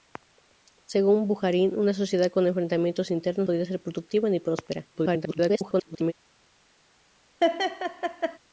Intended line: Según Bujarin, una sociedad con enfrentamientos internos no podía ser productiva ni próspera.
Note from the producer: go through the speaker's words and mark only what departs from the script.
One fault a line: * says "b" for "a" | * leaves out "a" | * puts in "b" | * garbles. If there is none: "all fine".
* leaves out "no"
* garbles